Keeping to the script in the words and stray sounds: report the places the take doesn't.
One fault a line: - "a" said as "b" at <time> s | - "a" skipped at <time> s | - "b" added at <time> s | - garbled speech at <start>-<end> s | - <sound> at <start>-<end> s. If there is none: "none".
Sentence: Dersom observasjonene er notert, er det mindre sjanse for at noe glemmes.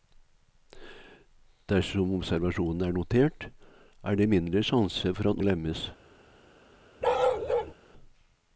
- "noe" skipped at 5.4 s
- bark at 7.0-7.7 s